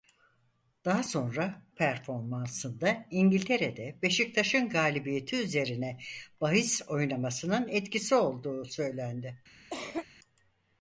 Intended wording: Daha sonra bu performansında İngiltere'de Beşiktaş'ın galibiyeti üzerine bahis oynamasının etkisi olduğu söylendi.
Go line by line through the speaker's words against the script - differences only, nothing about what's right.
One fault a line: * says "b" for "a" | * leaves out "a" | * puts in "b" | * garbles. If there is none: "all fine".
* leaves out "bu"